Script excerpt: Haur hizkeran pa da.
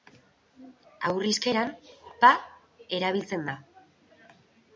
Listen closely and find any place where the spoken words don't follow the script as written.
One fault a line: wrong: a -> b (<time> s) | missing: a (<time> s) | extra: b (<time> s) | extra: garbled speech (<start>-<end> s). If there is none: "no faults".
extra: erabiltzen (3.0 s)